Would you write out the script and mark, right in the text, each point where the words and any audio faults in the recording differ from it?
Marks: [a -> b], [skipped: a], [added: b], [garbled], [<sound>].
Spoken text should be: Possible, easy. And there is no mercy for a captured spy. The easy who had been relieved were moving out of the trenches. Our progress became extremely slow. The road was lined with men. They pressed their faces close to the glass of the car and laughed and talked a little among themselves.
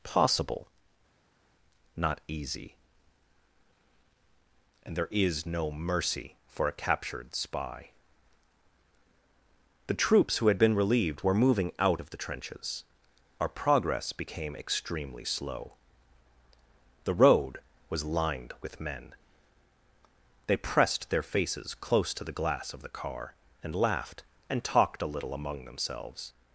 Possible, [added: not] easy. And there is no mercy for a captured spy. The [easy -> troops] who had been relieved were moving out of the trenches. Our progress became extremely slow. The road was lined with men. They pressed their faces close to the glass of the car and laughed and talked a little among themselves.